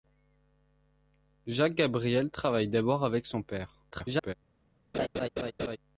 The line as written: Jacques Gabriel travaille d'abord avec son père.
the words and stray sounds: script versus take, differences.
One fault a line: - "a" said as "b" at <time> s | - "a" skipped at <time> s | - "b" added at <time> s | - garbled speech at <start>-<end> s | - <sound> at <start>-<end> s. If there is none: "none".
- garbled speech at 3.9-4.3 s
- laugh at 4.9-5.8 s